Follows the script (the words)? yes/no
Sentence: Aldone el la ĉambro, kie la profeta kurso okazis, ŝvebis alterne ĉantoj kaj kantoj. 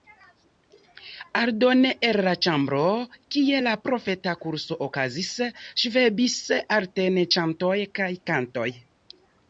yes